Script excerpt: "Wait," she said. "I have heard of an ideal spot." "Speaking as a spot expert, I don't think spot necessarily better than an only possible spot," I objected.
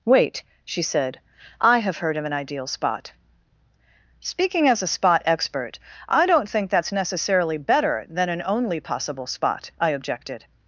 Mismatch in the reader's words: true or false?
true